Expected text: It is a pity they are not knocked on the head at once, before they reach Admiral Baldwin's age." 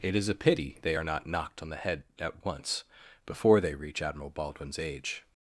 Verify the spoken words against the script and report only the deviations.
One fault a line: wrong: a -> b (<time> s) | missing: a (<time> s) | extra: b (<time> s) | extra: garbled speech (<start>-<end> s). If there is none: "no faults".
no faults